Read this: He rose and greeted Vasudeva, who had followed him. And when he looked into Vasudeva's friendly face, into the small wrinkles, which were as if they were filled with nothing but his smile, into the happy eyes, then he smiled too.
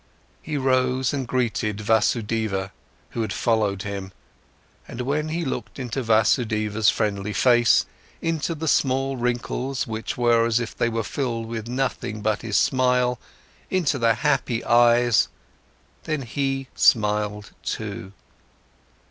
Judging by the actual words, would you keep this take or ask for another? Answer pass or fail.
pass